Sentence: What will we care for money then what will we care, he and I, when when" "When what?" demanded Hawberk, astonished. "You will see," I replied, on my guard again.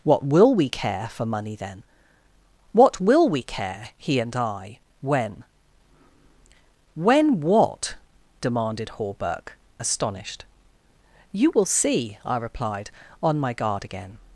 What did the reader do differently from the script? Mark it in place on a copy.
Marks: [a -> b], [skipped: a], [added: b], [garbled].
What will we care for money then what will we care, he and I, when when" [skipped: "When] what?" demanded Hawberk, astonished. "You will see," I replied, on my guard again.